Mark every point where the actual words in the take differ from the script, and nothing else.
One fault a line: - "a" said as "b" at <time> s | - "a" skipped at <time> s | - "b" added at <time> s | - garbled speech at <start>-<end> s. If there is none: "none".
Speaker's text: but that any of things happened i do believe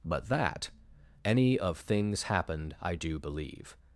none